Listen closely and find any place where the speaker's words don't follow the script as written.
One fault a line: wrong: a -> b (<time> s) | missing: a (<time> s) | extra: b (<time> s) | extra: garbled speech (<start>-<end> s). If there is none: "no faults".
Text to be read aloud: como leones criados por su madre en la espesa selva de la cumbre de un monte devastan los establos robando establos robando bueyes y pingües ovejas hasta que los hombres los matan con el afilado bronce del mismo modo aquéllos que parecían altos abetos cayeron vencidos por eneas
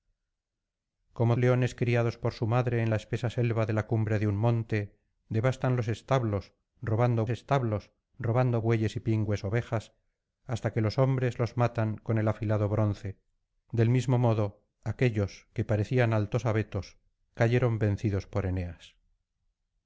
no faults